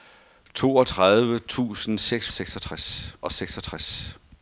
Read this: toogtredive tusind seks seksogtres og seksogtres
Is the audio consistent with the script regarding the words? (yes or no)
yes